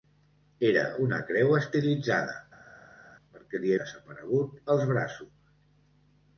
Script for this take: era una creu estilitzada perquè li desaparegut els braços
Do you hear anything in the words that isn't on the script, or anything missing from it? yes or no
no